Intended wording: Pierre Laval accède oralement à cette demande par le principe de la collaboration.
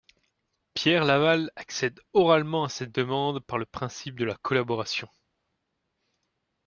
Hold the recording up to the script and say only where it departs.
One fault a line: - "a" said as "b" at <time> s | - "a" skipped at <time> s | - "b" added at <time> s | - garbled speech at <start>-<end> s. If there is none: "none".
none